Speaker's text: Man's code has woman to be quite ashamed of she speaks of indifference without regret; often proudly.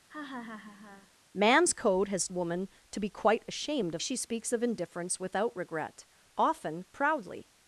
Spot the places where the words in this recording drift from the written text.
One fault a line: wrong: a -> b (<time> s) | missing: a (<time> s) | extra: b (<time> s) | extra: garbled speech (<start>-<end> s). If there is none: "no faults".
no faults